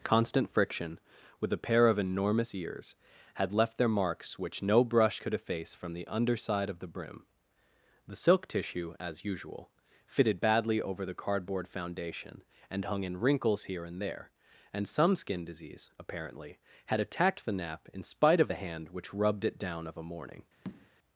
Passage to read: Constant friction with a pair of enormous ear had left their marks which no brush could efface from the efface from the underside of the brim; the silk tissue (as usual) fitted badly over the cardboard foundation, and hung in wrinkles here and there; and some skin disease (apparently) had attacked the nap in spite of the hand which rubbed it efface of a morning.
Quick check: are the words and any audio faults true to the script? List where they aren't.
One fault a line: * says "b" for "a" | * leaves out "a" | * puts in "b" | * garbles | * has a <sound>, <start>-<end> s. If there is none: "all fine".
* says "ears" for "ear"
* leaves out "efface from the"
* says "down" for "efface"
* has a tap, 20.6-20.9 s